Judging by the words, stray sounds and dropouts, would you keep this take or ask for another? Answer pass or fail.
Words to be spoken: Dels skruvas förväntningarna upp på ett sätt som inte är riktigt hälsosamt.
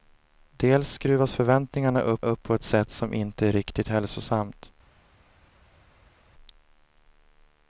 fail